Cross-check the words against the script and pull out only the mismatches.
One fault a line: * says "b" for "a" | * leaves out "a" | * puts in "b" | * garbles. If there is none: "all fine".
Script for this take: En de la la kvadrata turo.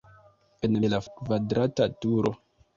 all fine